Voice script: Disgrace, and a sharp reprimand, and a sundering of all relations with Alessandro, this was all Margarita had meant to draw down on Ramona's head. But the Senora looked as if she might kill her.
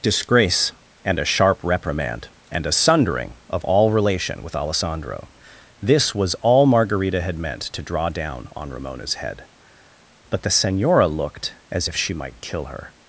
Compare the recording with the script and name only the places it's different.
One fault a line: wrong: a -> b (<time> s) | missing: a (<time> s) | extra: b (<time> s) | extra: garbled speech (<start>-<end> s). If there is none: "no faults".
wrong: relations -> relation (3.9 s)